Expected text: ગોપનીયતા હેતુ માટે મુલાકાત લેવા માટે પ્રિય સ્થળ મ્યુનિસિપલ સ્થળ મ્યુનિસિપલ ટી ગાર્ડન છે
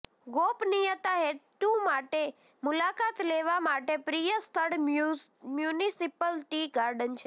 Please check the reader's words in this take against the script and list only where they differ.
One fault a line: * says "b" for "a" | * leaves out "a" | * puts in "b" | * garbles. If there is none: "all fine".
* leaves out "સ્થળ મ્યુનિસિપલ"